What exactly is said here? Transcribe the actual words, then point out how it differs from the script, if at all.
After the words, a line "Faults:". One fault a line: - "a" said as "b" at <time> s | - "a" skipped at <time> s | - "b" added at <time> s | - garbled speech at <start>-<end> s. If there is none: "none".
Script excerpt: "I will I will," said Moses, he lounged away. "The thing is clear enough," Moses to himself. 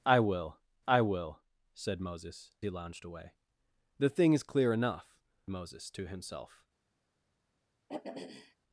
"I will I will," said Moses, he lounged away. "The thing is clear enough," Moses to himself.
Faults:
none